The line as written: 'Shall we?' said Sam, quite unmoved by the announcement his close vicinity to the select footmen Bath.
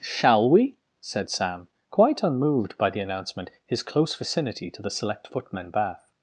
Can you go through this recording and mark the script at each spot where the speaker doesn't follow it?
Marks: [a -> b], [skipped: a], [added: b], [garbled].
'Shall we?' said Sam, quite unmoved by the announcement his close vicinity to the select footmen Bath.